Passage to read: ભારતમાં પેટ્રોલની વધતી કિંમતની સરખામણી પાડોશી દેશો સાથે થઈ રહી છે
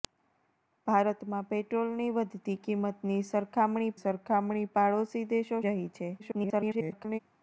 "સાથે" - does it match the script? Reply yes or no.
no